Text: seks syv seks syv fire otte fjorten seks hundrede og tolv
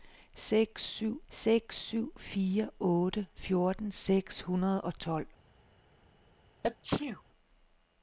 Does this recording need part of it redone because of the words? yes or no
no